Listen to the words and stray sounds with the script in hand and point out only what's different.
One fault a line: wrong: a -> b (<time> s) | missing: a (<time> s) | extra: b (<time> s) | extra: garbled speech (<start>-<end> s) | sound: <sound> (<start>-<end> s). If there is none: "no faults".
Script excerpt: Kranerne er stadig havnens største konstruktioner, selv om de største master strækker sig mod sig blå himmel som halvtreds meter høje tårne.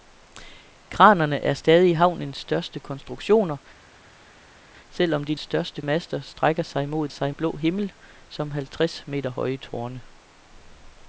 no faults